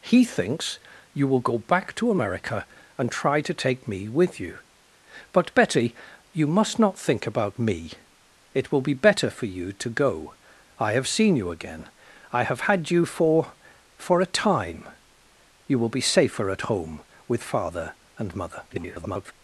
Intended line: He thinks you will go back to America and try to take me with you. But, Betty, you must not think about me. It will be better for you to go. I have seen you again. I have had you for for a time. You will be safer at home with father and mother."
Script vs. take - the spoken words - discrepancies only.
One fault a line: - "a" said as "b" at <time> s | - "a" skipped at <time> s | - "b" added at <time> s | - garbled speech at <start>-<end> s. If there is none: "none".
- garbled speech at 18.7-19.3 s